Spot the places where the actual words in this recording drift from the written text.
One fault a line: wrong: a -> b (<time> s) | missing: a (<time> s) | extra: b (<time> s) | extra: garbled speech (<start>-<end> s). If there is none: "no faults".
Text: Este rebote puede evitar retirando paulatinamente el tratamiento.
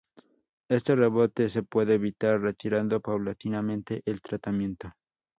extra: se (1.5 s)